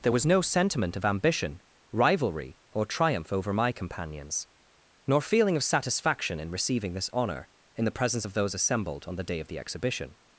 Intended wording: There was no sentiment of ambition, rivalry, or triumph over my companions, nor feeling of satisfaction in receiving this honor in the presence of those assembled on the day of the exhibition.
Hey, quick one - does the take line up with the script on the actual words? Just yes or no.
yes